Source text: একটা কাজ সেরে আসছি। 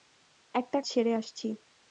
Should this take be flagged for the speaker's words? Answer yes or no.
yes